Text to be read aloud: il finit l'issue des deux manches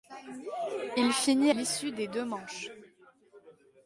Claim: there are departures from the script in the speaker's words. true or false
false